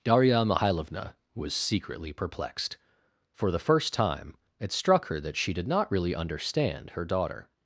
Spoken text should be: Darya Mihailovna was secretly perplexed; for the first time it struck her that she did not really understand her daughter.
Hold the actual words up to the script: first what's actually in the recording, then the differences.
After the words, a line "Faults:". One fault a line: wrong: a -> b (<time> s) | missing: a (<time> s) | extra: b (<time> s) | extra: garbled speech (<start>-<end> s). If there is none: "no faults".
Darya Mihailovna was secretly perplexed; for the first time it struck her that she did not really understand her daughter.
Faults:
no faults